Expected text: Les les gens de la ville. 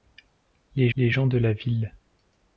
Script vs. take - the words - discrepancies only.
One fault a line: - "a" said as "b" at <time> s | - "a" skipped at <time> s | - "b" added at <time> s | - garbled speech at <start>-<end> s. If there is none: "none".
none